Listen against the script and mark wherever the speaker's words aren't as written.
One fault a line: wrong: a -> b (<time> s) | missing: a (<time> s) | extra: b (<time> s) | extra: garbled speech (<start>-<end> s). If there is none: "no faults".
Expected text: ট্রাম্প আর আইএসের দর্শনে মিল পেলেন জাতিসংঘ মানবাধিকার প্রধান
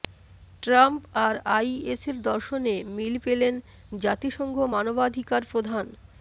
no faults